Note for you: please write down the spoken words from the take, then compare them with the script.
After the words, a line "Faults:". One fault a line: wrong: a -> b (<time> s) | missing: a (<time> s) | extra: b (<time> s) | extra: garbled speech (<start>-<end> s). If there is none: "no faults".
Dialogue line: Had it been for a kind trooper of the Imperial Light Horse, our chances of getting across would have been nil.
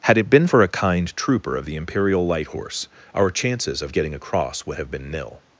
Had it been for a kind trooper of the Imperial Light Horse, our chances of getting across would have been nil.
Faults:
no faults